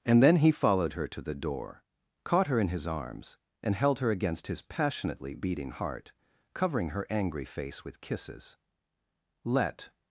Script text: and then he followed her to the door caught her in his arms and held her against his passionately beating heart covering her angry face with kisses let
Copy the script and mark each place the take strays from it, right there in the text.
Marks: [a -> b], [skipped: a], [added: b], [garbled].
and then he followed her to the door caught her in his arms and held her against his passionately beating heart covering her angry face with kisses let